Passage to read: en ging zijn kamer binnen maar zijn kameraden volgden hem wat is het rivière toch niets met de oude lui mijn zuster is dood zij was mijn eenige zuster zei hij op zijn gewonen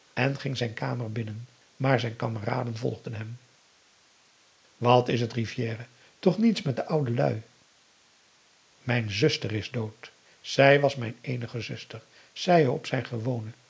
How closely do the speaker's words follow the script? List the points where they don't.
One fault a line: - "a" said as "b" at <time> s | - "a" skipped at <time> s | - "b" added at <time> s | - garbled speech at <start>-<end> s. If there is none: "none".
none